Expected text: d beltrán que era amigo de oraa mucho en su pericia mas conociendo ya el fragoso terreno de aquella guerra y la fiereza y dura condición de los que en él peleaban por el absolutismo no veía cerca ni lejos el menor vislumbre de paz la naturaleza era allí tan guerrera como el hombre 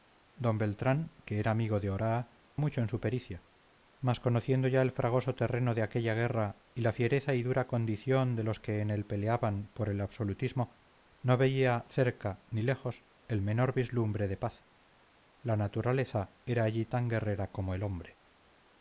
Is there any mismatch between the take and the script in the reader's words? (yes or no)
no